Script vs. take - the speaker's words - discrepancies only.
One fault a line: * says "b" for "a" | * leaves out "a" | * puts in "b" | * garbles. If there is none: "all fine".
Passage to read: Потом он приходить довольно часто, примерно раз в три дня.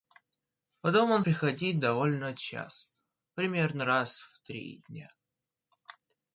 all fine